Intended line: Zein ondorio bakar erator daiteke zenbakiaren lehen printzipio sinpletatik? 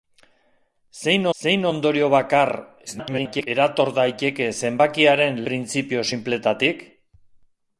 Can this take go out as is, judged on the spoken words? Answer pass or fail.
fail